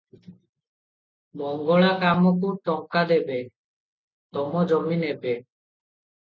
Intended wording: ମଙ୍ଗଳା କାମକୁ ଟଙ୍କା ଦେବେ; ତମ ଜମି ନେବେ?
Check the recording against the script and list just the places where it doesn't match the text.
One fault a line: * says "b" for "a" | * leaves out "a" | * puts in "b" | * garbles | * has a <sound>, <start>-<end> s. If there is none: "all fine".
all fine